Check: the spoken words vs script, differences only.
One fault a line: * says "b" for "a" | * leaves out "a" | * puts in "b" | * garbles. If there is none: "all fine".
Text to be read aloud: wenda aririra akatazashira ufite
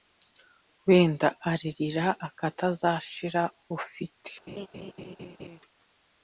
all fine